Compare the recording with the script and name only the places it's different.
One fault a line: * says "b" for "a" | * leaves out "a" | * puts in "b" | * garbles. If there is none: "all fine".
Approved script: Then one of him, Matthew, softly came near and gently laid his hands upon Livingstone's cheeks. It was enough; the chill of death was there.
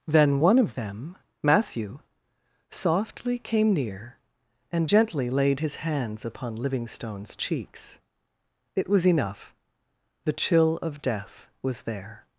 * says "them" for "him"